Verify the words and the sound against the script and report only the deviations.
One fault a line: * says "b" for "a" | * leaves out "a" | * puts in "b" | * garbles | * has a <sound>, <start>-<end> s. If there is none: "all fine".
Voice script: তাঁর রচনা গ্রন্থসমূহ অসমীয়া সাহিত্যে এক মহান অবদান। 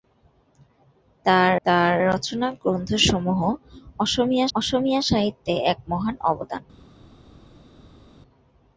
* puts in "তাঁর"
* puts in "অসমীয়া"